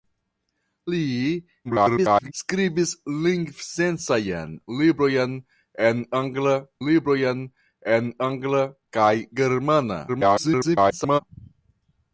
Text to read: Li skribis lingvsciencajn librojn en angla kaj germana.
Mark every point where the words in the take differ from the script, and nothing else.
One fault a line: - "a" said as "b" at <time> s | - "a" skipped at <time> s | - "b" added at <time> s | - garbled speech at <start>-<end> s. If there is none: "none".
- garbled speech at 1.6-2.3 s
- "librojn en angla" added at 6.9 s
- garbled speech at 10.1-11.2 s